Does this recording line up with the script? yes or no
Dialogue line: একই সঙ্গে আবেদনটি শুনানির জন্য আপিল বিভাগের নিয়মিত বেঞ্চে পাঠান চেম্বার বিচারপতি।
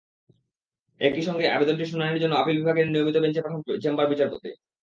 yes